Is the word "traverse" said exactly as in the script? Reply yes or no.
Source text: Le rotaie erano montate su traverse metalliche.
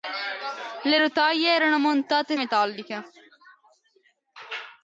no